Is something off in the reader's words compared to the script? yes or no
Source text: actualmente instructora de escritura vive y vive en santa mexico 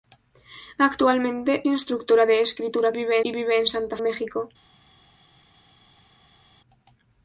no